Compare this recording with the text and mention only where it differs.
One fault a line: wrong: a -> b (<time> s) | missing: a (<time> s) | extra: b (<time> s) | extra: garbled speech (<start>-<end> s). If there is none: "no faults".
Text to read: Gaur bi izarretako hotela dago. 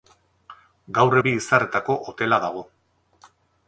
no faults